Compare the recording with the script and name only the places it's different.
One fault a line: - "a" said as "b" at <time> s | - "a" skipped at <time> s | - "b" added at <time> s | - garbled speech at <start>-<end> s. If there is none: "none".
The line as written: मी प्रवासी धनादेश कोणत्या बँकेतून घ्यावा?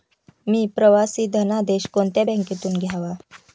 none